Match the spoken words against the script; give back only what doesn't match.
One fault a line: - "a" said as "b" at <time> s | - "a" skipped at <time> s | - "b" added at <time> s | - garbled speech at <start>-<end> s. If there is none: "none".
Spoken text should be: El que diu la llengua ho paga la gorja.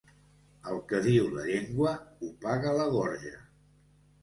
none